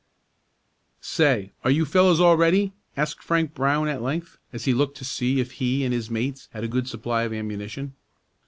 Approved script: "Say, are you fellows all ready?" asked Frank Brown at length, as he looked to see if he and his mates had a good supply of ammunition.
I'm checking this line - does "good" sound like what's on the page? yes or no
yes